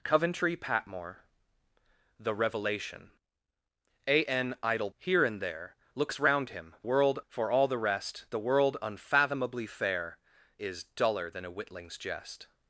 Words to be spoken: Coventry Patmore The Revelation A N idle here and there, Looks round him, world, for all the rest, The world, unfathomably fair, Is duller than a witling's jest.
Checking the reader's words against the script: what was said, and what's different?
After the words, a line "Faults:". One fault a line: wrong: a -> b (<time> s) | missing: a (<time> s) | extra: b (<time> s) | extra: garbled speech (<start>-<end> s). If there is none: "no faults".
Coventry Patmore The Revelation A N idle here and there, Looks round him, world, for all the rest, The world, unfathomably fair, Is duller than a witling's jest.
Faults:
no faults